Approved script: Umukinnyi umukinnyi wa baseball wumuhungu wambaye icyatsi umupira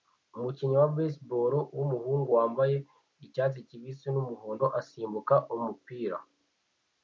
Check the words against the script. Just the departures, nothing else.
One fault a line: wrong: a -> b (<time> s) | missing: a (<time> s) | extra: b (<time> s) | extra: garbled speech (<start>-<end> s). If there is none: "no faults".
missing: umukinnyi (0.8 s)
extra: kibisi numuhondo asimbuka (3.7 s)